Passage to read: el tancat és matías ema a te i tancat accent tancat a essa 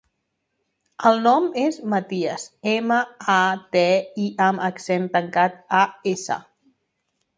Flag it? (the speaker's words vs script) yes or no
yes